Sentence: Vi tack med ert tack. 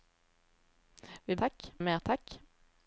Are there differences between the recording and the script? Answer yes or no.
no